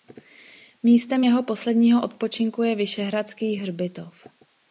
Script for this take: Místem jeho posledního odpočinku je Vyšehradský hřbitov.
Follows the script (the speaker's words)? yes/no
yes